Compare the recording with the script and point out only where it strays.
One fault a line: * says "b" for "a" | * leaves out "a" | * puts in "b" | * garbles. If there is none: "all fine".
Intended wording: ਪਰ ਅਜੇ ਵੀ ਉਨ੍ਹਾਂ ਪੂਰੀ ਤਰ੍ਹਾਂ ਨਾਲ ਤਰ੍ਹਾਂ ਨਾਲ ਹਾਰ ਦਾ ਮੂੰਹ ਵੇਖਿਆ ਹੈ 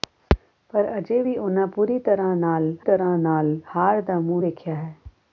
all fine